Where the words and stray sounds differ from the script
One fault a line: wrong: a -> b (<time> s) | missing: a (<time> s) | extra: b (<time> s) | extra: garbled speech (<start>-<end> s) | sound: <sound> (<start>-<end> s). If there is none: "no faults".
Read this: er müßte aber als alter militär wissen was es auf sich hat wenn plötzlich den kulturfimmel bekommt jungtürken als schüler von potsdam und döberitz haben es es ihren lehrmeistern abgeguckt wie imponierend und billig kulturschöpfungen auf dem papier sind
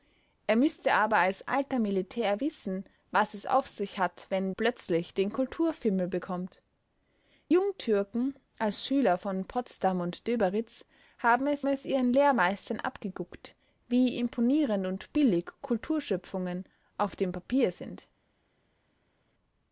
no faults